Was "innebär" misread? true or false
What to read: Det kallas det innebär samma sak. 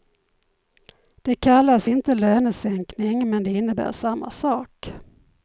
false